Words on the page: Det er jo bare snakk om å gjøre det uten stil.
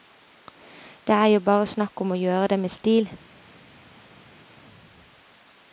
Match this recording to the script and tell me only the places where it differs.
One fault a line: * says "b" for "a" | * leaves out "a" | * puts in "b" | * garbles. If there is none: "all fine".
* says "med" for "uten"